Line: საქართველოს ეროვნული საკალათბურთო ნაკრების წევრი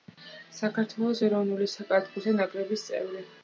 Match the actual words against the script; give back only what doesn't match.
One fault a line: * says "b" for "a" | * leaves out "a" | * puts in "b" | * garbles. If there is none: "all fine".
all fine